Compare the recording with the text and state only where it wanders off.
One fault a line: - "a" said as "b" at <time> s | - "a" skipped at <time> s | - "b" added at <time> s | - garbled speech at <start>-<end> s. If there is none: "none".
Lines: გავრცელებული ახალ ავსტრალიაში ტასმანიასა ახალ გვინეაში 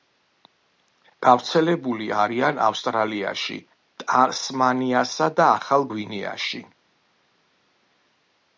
- "ახალ" said as "არიან" at 2.2 s
- "და" added at 5.4 s